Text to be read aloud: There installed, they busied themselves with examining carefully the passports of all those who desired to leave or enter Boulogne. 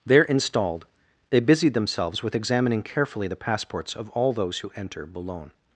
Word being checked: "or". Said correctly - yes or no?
no